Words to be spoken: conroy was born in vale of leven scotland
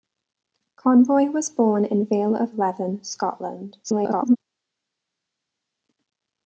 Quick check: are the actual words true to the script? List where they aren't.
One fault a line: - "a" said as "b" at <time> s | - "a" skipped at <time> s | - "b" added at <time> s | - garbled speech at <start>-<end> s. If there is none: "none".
- garbled speech at 3.8-4.4 s